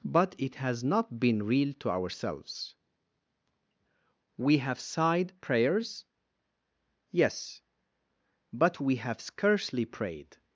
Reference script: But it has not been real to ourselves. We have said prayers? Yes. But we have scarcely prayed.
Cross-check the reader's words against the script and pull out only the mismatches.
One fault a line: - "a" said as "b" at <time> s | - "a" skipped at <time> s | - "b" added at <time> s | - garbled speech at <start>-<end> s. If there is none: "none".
- "said" said as "sighed" at 4.8 s